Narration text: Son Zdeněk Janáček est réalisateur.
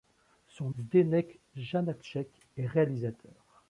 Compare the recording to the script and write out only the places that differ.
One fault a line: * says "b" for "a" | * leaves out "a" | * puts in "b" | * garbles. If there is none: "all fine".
all fine